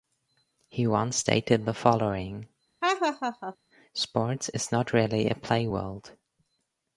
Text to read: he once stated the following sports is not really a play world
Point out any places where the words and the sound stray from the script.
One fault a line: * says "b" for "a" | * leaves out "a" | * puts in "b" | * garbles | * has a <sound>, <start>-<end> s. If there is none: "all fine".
* has a laugh, 2.8-3.6 s